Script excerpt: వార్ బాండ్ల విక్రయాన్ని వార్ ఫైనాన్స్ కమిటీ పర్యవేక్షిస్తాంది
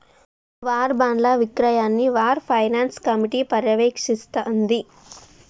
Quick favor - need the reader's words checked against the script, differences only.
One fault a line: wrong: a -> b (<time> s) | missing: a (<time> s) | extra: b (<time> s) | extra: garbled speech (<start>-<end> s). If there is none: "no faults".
no faults